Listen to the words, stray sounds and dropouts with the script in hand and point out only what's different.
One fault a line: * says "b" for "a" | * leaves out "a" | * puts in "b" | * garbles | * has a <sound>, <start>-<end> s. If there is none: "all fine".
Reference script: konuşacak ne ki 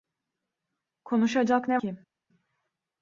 all fine